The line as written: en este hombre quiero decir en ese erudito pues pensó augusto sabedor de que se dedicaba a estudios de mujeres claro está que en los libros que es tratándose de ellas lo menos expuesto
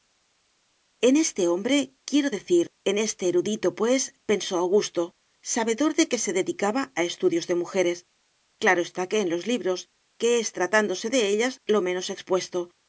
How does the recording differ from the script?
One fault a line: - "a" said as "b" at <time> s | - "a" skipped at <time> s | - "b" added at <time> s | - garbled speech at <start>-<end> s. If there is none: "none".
- "ese" said as "este" at 3.1 s